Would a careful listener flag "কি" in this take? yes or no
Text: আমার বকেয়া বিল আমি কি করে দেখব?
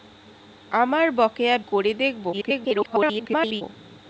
yes